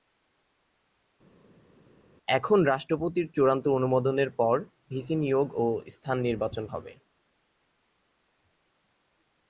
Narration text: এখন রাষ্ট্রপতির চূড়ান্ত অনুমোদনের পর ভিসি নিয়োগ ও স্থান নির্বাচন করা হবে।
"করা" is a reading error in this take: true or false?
true